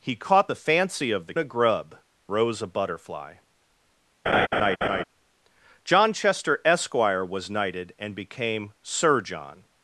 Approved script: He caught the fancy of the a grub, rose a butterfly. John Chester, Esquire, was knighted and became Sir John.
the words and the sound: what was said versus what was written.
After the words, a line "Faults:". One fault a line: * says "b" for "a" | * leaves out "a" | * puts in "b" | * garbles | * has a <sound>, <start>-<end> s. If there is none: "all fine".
He caught the fancy of the a grub, rose a butterfly. John Chester, Esquire, was knighted and became Sir John.
Faults:
* has a laugh, 4.3-5.0 s